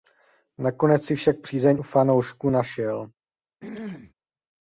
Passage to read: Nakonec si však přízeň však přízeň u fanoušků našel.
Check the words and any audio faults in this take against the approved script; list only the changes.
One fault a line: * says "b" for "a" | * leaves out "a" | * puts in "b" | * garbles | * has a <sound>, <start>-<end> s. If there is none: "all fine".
* leaves out "však přízeň"
* has a throat clearing, 3.6-4.1 s